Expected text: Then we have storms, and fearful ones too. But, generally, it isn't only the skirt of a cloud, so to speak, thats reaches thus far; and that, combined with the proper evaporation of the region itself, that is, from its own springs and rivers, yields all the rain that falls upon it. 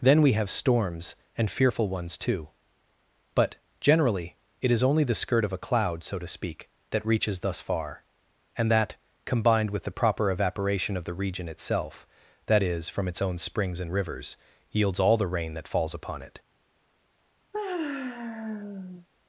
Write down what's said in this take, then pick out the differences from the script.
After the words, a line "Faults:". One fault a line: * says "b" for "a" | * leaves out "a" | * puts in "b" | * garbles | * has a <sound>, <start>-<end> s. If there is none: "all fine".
Then we have storms, and fearful ones too. But, generally, it is only the skirt of a cloud, so to speak, that reaches thus far; and that, combined with the proper evaporation of the region itself, that is, from its own springs and rivers, yields all the rain that falls upon it.
Faults:
* says "is" for "isn't"
* says "that" for "thats"
* has a sigh, 17.5-19.1 s